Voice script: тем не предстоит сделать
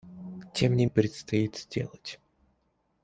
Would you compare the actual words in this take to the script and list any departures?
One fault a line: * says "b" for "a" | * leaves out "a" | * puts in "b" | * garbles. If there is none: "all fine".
all fine